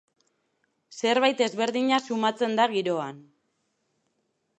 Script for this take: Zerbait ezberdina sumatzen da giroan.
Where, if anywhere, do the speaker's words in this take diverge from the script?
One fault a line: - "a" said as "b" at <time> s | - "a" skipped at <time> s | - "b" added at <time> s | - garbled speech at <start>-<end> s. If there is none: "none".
none